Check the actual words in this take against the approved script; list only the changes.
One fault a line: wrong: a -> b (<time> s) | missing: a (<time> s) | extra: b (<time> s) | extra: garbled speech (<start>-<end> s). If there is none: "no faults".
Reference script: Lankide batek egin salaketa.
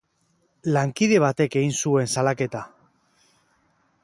extra: zuen (1.8 s)